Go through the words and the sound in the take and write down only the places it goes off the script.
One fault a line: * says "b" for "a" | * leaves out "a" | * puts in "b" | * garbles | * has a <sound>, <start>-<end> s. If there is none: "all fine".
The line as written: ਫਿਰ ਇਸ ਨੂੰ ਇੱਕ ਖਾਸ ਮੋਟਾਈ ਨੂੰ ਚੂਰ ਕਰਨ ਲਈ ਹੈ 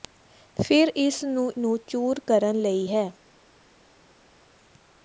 * leaves out "ਇੱਕ ਖਾਸ ਮੋਟਾਈ"